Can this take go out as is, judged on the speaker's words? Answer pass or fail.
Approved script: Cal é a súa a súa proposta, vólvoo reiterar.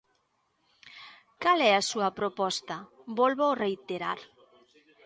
fail